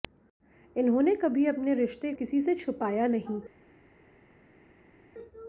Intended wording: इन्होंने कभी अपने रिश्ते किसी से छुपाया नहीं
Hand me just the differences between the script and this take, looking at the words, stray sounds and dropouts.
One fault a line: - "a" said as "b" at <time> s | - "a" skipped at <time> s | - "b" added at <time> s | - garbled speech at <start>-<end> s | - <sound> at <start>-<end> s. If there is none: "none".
none